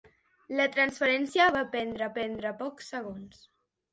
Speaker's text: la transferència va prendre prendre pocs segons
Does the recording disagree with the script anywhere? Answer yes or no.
no